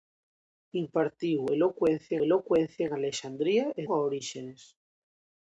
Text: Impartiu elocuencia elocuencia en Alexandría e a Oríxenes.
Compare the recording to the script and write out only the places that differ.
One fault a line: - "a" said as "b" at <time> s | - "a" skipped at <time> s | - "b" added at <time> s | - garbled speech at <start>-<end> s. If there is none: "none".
none